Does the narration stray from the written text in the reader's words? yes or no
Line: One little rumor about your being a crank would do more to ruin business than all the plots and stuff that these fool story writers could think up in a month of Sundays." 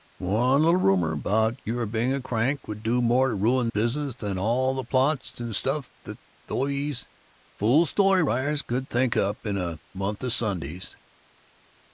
no